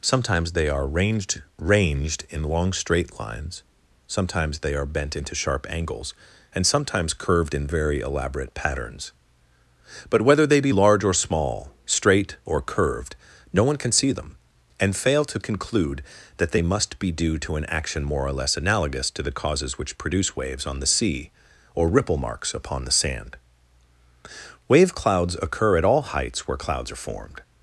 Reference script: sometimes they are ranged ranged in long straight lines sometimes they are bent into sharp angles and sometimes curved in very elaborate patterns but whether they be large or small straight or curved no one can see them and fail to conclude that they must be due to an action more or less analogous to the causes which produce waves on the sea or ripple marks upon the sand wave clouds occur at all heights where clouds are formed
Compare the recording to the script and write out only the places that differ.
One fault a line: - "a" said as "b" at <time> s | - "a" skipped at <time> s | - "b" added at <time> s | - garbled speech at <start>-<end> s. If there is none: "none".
none